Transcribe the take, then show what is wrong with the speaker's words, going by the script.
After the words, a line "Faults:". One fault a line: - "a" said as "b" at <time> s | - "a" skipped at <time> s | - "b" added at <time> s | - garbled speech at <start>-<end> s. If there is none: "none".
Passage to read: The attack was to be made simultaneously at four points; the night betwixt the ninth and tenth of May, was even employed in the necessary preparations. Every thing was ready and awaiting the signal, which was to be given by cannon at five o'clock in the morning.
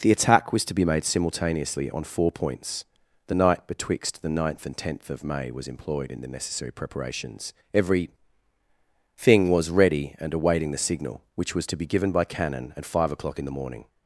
The attack was to be made simultaneously on four points; the night betwixt the ninth and tenth of May, was employed in the necessary preparations. Every thing was ready and awaiting the signal, which was to be given by cannon at five o'clock in the morning.
Faults:
- "at" said as "on" at 1.9 s
- "even" skipped at 5.7 s